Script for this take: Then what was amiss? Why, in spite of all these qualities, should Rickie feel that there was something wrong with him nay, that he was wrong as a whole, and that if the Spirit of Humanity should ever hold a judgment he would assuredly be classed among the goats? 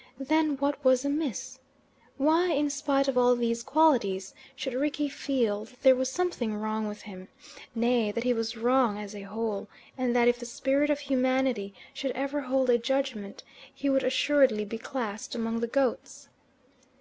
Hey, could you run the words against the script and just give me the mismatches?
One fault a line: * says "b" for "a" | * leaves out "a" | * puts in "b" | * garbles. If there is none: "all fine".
all fine